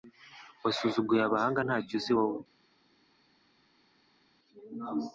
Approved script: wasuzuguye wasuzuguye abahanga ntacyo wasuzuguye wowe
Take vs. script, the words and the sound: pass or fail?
fail